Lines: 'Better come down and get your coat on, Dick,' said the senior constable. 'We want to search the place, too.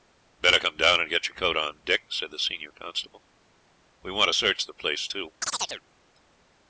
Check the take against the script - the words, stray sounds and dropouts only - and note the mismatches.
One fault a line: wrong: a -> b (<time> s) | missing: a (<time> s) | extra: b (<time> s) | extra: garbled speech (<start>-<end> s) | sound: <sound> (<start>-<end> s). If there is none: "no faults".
sound: chirp (5.4-5.8 s)